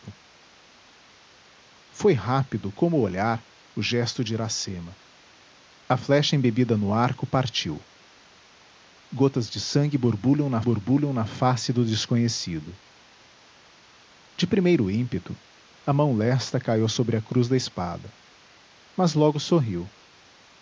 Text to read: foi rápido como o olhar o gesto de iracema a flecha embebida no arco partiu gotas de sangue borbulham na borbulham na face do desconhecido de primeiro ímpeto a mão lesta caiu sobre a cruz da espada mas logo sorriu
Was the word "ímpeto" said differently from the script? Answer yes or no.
no